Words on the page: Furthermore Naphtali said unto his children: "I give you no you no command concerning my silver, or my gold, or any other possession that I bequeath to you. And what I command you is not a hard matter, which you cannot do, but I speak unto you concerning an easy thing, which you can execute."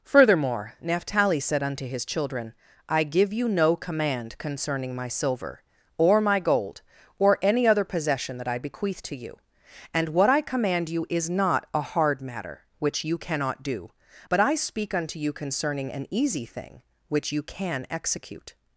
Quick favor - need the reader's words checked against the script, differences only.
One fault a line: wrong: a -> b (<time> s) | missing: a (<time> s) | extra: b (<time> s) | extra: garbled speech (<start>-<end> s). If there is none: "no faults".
missing: you no (3.8 s)